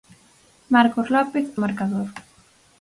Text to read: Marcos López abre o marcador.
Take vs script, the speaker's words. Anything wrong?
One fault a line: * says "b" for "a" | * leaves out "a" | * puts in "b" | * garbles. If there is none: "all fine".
* leaves out "abre"